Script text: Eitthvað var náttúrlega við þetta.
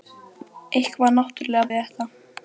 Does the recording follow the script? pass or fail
pass